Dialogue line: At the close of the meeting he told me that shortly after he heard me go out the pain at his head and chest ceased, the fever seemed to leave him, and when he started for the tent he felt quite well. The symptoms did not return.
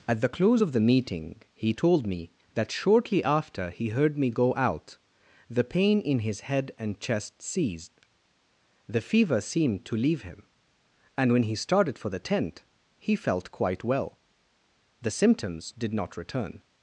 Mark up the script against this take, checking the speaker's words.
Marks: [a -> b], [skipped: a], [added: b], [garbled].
At the close of the meeting he told me that shortly after he heard me go out the pain [at -> in] his head and chest ceased, the fever seemed to leave him, and when he started for the tent he felt quite well. The symptoms did not return.